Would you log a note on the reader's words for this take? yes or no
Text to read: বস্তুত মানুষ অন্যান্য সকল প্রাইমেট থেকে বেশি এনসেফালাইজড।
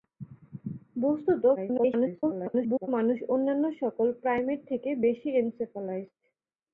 yes